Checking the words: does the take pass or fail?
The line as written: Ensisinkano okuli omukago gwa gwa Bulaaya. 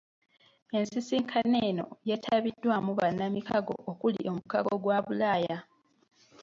fail